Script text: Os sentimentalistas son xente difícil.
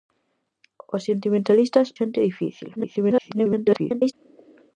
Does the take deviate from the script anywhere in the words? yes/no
yes